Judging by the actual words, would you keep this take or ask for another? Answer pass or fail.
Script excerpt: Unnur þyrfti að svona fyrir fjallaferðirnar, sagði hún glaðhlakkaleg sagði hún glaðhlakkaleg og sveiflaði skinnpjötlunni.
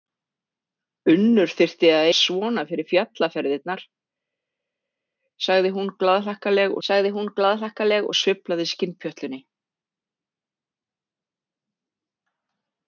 pass